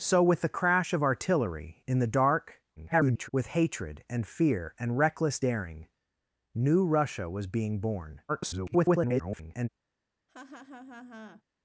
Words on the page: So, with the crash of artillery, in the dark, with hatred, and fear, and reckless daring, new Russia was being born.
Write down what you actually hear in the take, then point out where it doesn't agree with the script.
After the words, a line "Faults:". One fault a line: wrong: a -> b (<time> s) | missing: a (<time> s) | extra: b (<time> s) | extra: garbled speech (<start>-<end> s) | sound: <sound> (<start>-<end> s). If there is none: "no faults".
So, with the crash of artillery, in the dark, [garbled] with hatred, and fear, and reckless daring, new Russia was being born. [garbled]
Faults:
extra: garbled speech (2.8-3.3 s)
extra: garbled speech (8.3-9.7 s)
sound: laugh (10.3-11.4 s)